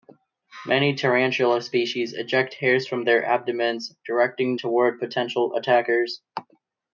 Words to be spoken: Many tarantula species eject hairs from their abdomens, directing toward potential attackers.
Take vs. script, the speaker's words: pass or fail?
pass